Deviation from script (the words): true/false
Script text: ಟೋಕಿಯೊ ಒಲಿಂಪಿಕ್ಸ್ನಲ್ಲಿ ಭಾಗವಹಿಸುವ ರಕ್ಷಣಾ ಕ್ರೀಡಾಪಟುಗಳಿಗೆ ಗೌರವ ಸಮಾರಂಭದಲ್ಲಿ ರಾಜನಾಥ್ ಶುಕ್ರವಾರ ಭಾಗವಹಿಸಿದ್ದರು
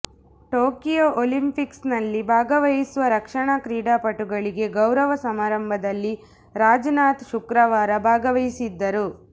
false